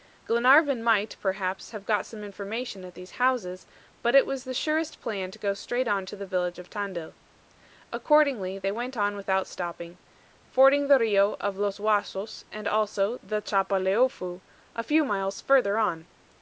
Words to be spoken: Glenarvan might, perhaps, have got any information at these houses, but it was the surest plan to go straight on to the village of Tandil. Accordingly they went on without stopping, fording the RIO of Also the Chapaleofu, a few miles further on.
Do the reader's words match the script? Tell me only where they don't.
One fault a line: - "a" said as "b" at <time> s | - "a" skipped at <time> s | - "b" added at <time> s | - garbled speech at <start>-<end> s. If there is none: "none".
- "any" said as "some" at 2.1 s
- "Los Huasos and" added at 11.6 s